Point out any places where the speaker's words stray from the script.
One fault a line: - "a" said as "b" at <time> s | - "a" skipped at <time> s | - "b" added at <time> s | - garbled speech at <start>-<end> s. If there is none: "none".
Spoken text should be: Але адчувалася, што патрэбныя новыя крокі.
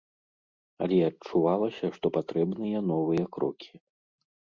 none